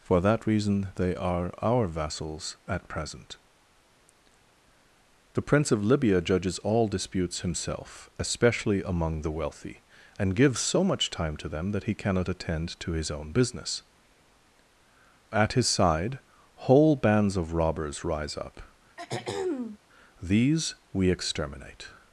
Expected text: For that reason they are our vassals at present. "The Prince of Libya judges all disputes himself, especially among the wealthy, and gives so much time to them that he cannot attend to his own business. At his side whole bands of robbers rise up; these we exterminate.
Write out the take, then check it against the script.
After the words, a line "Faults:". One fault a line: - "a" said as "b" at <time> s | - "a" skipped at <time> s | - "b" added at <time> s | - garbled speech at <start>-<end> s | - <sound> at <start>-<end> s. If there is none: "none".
For that reason they are our vassals at present. "The Prince of Libya judges all disputes himself, especially among the wealthy, and gives so much time to them that he cannot attend to his own business. At his side whole bands of robbers rise up; these we exterminate.
Faults:
- throat clearing at 19.0-19.8 s